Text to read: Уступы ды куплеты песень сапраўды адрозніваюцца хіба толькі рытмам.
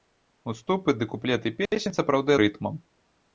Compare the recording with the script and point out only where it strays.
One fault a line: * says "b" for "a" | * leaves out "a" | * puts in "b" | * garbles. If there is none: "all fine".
* leaves out "адрозніваюцца хіба толькі"